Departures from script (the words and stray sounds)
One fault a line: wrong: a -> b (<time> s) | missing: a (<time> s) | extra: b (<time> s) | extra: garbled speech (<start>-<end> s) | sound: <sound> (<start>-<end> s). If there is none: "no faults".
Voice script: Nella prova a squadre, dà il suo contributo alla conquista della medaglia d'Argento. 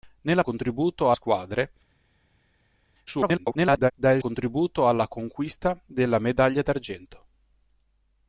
wrong: prova -> contributo (0.4 s)
extra: garbled speech (3.1-3.9 s)
missing: suo (4.2 s)